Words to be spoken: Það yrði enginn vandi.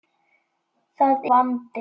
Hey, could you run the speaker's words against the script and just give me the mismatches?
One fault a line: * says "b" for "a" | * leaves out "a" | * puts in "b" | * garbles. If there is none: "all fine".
* leaves out "yrði enginn"